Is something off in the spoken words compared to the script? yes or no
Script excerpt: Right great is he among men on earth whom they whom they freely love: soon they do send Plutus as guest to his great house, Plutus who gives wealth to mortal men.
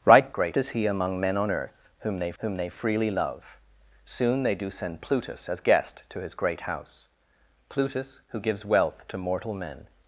no